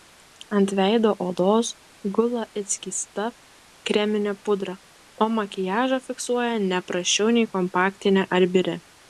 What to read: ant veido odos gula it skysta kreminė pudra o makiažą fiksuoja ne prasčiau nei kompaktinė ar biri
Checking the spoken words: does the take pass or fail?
pass